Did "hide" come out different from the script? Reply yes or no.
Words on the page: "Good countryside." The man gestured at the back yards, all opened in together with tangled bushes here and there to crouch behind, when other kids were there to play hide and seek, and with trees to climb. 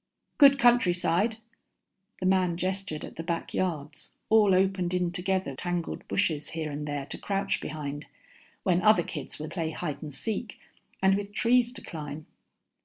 no